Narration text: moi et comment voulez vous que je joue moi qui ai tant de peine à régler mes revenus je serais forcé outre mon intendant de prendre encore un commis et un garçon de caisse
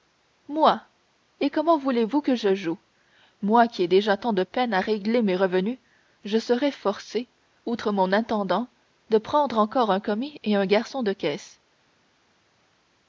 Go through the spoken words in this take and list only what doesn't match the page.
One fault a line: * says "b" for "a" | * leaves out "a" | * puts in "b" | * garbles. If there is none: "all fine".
* puts in "déjà"